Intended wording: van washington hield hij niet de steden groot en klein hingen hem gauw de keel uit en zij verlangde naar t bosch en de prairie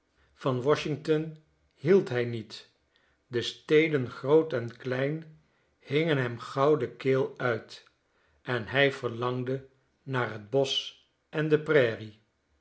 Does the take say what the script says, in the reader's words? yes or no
no